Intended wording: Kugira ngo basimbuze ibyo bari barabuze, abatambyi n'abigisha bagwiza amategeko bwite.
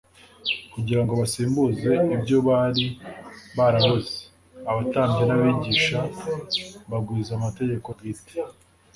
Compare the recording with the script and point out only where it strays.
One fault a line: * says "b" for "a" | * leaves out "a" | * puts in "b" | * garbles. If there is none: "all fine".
all fine